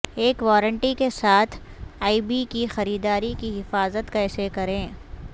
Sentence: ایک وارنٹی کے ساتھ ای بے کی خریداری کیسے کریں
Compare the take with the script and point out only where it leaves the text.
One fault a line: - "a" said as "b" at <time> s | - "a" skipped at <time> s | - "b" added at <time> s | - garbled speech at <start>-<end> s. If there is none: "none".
- "کی حفاظت" added at 3.4 s